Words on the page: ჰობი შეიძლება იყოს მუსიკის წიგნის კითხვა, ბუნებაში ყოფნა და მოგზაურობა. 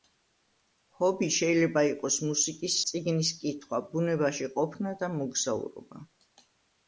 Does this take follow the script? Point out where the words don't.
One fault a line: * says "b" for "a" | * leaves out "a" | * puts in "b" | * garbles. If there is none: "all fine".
all fine